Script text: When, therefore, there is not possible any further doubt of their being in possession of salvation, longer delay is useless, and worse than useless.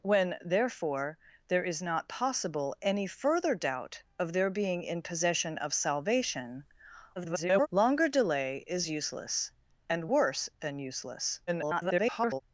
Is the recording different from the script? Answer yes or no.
yes